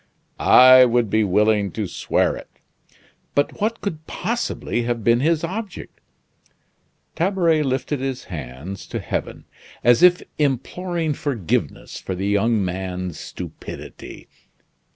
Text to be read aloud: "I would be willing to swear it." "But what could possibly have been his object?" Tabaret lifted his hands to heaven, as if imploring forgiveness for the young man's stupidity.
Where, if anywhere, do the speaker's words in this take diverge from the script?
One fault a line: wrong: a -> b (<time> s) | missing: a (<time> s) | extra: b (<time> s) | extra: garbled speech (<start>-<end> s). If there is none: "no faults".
no faults